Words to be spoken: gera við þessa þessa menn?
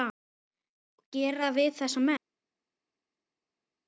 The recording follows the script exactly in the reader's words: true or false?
false